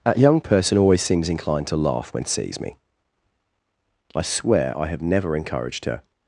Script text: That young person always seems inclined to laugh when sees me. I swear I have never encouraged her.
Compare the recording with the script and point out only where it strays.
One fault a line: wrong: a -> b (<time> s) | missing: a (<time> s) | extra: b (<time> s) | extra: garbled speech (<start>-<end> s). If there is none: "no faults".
no faults